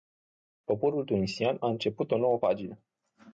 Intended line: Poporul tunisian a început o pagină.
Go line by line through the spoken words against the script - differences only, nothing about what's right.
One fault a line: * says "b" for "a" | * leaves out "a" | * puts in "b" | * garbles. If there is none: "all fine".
* puts in "nouă"